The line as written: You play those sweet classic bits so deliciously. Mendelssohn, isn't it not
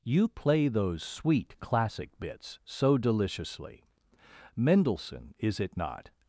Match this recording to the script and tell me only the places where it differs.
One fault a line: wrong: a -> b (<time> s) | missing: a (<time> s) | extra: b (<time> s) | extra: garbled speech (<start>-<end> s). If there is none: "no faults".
wrong: isn't -> is (5.4 s)